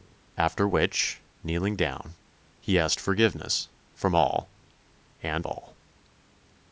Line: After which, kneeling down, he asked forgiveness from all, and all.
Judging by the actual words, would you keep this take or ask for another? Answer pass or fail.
pass